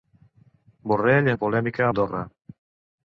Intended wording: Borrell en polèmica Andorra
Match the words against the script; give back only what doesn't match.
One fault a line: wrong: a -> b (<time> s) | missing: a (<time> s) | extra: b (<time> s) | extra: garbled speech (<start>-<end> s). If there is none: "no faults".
no faults